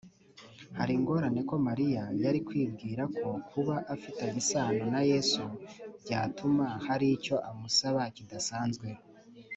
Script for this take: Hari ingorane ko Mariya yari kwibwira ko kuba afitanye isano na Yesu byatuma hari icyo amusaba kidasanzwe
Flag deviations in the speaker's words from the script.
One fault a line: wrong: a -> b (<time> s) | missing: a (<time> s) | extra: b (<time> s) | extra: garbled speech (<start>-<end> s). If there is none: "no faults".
no faults